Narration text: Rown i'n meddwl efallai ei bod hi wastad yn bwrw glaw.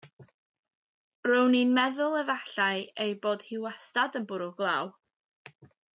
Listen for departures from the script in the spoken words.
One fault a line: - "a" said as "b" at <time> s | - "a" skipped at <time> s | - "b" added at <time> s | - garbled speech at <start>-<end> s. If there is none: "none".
none